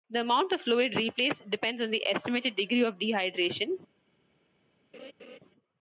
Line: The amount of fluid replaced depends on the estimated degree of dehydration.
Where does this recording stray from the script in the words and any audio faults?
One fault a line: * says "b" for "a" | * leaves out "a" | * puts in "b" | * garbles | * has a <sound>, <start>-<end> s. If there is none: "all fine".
* has a laugh, 4.9-5.4 s